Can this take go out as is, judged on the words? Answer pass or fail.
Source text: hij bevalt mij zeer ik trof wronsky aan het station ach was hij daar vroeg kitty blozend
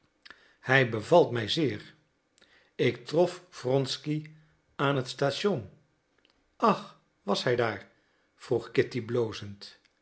pass